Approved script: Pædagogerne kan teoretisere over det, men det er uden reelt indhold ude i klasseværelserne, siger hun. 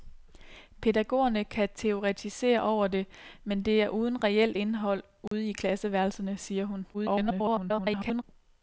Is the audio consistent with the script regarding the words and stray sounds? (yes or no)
no